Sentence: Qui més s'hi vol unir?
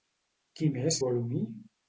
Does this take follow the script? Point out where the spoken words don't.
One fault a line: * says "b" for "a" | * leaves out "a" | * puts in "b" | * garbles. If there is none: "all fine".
* leaves out "s'hi"